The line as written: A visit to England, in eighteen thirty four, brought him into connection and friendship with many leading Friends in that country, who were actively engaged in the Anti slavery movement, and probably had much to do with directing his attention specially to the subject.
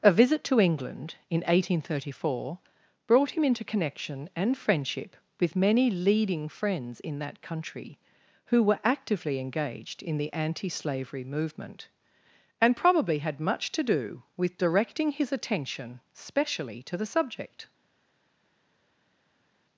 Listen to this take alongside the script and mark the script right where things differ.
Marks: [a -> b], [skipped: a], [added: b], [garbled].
A visit to England, in eighteen thirty four, brought him into connection and friendship with many leading Friends in that country, who were actively engaged in the Anti slavery movement, and probably had much to do with directing his attention specially to the subject.